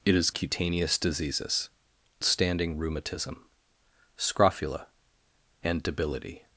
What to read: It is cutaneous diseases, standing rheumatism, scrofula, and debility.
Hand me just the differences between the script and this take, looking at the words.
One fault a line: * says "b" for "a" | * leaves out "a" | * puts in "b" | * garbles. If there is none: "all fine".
all fine